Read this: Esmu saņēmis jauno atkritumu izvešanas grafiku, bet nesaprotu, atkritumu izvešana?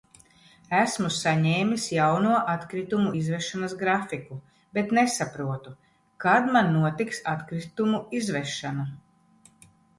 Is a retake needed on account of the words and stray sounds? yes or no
yes